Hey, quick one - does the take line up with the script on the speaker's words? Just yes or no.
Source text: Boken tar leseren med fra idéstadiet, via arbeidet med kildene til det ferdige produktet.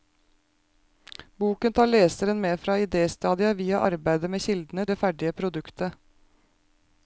no